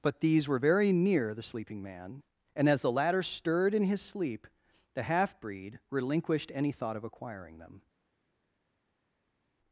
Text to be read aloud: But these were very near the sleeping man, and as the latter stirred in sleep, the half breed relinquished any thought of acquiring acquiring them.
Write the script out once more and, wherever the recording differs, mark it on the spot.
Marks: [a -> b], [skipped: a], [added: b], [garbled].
But these were very near the sleeping man, and as the latter stirred in [added: his] sleep, the half breed relinquished any thought of acquiring [skipped: acquiring] them.